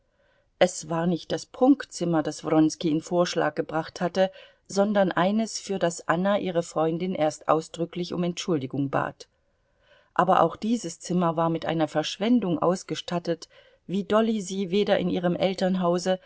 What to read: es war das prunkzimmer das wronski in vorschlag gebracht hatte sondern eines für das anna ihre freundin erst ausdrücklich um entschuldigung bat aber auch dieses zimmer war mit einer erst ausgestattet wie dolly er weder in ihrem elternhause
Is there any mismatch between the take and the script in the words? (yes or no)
yes